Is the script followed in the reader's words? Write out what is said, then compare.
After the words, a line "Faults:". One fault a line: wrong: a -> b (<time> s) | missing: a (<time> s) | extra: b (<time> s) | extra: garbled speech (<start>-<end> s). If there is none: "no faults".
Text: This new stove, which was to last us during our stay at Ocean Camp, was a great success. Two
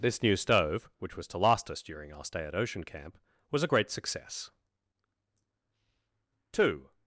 This new stove, which was to last us during our stay at Ocean Camp, was a great success. Two
Faults:
no faults